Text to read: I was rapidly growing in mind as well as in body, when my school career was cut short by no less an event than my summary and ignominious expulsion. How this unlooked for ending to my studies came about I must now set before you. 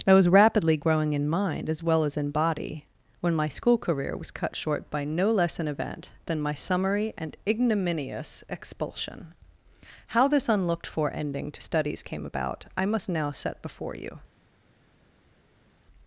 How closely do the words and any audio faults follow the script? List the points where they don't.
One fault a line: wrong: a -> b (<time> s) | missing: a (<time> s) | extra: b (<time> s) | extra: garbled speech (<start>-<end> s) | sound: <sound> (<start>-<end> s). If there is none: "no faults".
missing: my (11.6 s)